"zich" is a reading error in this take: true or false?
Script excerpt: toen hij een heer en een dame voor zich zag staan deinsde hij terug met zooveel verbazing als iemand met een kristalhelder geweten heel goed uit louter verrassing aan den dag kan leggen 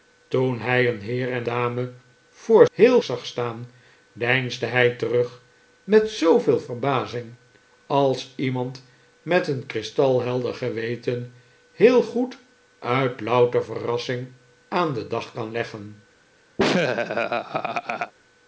true